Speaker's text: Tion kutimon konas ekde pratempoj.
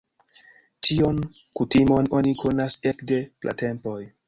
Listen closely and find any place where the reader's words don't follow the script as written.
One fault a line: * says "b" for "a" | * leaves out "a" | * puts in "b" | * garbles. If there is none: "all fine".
* puts in "oni"